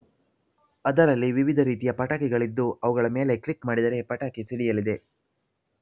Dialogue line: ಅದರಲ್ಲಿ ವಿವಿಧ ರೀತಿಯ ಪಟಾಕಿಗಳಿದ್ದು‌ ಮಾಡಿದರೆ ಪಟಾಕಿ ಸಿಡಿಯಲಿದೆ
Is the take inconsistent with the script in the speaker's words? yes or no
yes